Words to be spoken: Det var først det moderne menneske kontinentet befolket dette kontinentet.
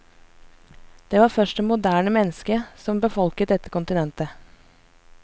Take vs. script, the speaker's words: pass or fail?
fail